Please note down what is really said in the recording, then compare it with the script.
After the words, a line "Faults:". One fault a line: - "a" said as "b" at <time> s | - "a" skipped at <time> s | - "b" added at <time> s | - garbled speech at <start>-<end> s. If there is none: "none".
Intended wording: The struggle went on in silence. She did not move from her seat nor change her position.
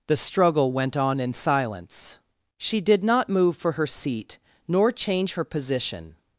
The struggle went on in silence. She did not move for her seat nor change her position.
Faults:
- "from" said as "for" at 3.6 s